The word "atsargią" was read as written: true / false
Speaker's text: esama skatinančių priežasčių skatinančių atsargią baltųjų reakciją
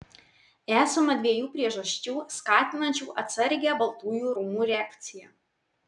true